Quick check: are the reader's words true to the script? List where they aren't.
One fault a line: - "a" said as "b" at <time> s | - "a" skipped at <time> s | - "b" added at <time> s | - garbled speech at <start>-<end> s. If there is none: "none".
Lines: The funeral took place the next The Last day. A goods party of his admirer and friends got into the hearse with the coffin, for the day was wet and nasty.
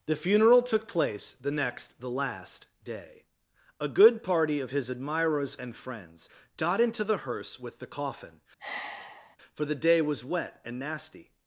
- "goods" said as "good" at 3.9 s
- "admirer" said as "admirers" at 4.9 s